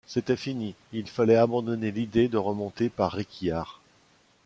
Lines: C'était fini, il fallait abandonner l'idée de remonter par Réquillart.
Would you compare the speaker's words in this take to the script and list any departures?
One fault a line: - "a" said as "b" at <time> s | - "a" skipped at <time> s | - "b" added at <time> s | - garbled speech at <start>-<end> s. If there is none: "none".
none